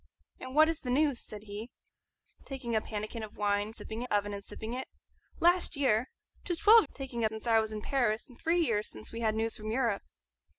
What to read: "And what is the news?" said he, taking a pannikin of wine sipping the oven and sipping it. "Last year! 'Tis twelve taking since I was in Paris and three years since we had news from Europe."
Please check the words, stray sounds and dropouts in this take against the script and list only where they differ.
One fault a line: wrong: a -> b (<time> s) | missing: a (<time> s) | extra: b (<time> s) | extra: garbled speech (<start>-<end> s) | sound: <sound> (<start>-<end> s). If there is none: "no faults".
no faults